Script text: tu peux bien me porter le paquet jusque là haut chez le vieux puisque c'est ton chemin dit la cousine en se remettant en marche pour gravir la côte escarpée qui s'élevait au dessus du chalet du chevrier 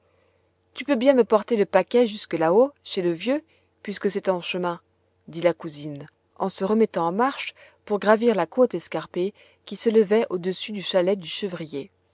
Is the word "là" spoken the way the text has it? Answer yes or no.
yes